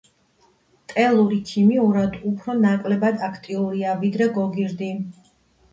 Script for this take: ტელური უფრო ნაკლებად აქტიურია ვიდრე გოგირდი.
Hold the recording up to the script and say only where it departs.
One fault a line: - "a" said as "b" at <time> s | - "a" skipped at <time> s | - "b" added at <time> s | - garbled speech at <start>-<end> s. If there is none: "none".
- "ქიმიურად" added at 1.5 s